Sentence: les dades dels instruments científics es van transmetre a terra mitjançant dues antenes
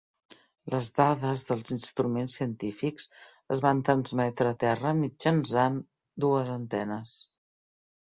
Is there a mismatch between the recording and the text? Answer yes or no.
no